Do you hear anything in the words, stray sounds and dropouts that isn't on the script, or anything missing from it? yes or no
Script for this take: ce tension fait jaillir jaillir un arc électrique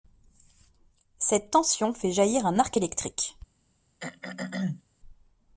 yes